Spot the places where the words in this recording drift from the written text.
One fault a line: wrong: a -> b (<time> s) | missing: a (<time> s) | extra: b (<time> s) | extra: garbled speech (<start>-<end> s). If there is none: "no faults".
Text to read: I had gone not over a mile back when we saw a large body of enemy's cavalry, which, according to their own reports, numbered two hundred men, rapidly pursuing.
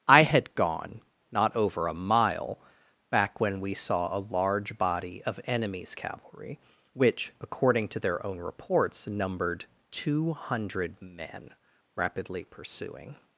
no faults